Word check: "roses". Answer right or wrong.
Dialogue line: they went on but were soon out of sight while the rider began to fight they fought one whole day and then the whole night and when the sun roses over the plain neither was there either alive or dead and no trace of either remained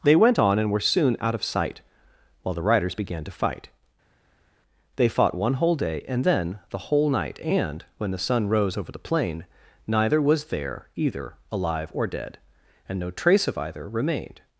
wrong